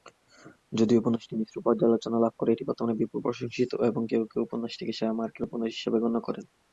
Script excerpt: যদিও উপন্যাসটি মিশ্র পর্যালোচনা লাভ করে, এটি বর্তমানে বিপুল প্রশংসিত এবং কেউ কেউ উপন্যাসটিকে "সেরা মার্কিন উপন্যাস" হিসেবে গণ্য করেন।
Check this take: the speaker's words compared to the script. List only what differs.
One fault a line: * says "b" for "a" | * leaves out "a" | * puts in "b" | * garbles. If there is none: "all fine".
all fine